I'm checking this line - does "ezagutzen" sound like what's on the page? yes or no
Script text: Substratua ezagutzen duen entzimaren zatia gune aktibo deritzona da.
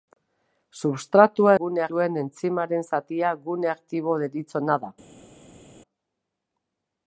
no